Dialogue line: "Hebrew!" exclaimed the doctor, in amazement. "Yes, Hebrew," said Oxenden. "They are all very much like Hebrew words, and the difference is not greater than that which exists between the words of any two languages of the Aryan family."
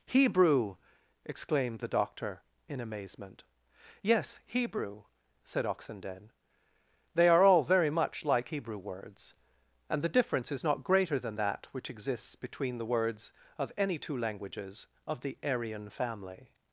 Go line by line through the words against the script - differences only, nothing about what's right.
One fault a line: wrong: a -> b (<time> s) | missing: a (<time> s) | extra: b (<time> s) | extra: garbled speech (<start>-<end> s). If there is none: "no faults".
no faults